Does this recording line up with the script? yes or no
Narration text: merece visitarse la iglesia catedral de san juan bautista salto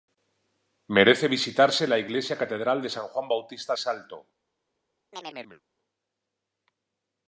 yes